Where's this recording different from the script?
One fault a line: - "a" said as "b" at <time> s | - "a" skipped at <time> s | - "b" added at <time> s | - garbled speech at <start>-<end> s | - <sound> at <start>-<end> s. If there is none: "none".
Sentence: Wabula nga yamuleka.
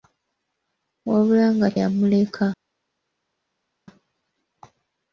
none